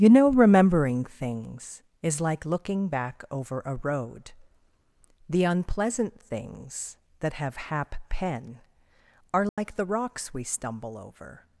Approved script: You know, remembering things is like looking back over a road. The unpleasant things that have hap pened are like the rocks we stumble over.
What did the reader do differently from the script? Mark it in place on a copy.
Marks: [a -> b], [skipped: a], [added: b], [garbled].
You know, remembering things is like looking back over a road. The unpleasant things that have hap [pened -> pen] are like the rocks we stumble over.